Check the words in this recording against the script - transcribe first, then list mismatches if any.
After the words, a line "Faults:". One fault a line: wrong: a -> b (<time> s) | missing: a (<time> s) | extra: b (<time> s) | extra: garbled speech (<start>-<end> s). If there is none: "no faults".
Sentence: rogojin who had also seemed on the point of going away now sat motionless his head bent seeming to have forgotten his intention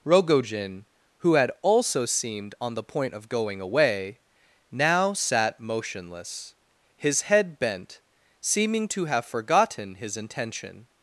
rogojin who had also seemed on the point of going away now sat motionless his head bent seeming to have forgotten his intention
Faults:
no faults